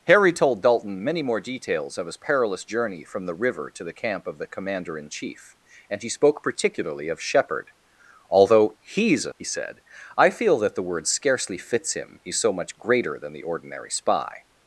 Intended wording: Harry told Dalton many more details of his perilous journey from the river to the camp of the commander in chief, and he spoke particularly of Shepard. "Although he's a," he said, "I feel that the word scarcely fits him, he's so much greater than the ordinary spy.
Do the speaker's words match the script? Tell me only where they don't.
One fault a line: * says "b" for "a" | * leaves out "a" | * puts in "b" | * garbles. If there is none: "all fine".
all fine